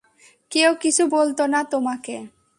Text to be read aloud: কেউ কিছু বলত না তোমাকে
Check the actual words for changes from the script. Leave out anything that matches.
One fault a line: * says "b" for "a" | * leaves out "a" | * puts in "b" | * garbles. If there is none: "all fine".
all fine